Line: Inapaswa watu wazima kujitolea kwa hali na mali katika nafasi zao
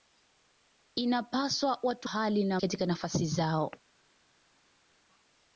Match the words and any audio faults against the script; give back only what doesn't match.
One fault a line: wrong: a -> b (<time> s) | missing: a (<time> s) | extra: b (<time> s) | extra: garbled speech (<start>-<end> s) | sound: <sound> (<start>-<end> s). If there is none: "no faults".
missing: wazima kujitolea kwa (2.1 s)
missing: mali (2.6 s)